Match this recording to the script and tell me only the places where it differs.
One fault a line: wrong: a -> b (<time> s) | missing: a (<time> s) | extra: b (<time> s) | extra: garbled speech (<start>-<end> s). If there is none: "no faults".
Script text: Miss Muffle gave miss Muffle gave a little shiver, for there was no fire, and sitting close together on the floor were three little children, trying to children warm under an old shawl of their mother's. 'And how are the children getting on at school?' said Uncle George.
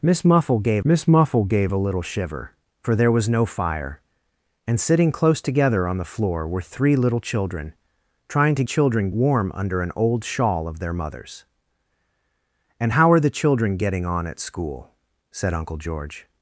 no faults